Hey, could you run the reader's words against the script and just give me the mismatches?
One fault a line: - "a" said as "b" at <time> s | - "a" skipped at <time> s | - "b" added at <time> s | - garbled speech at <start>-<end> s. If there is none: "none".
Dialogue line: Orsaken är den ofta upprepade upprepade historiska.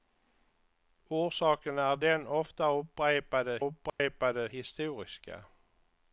none